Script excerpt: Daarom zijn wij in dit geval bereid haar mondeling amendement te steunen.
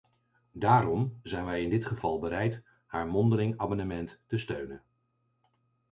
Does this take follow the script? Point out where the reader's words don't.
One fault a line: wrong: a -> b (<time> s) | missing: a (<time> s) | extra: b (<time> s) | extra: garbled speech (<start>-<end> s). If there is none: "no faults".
no faults